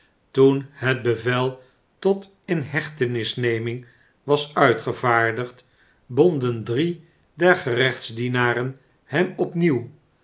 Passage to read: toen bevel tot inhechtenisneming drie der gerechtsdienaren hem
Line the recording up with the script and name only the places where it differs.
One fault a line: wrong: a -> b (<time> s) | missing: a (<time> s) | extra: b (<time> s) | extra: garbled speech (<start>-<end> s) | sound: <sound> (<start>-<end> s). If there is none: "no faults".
extra: het (0.7 s)
extra: was uitgevaardigd bonden (4.2 s)